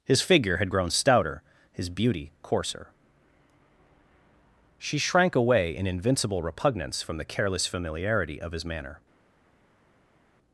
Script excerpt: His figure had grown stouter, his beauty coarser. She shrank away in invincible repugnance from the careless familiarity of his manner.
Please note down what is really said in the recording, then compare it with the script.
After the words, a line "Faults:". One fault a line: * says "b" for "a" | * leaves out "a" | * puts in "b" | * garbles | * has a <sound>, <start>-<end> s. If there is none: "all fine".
His figure had grown stouter, his beauty coarser. She shrank away in invincible repugnance from the careless familiarity of his manner.
Faults:
all fine